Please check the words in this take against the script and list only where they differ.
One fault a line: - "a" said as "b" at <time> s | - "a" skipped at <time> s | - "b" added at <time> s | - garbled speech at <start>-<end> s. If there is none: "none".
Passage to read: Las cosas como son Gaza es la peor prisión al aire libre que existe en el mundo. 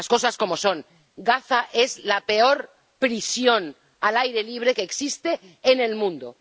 none